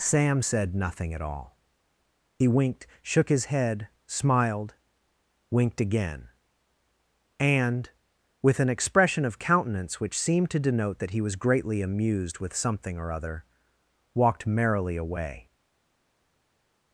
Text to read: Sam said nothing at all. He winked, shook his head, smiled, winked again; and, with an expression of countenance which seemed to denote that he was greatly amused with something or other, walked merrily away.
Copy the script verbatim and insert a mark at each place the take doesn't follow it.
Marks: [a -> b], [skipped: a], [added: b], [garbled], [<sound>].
Sam said nothing at all. He winked, shook his head, smiled, winked again; and, with an expression of countenance which seemed to denote that he was greatly amused with something or other, walked merrily away.